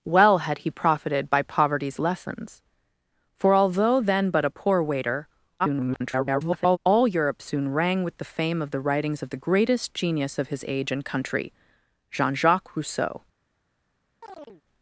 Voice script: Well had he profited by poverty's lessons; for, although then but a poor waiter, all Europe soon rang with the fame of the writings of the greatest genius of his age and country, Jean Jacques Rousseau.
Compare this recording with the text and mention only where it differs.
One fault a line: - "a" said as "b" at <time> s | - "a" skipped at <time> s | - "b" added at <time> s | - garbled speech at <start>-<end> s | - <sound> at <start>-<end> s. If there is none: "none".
- garbled speech at 5.6-6.8 s
- chirp at 14.2-14.6 s